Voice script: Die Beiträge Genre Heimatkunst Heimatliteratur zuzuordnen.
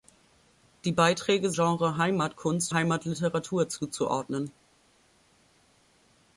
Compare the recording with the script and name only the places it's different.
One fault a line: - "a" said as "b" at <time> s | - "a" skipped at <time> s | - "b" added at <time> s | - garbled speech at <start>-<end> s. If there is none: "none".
none